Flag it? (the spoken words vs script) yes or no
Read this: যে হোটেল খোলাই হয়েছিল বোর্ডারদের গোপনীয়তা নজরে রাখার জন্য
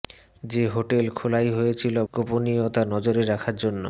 yes